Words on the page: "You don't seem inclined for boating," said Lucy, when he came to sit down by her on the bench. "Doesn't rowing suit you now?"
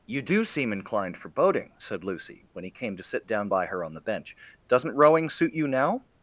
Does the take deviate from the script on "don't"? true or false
true